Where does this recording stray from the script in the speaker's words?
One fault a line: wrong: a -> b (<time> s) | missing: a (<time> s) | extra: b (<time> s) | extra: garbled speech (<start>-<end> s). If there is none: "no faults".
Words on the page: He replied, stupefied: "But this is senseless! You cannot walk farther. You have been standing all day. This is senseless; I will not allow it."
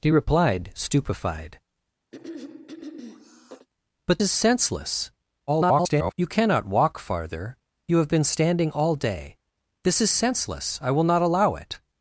missing: this (4.2 s)
extra: garbled speech (5.5-6.1 s)